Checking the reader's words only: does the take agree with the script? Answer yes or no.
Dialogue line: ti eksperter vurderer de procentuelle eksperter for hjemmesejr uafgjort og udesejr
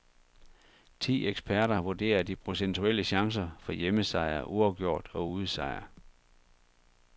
no